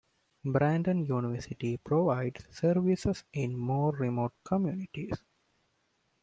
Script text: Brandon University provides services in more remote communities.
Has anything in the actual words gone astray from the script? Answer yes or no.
no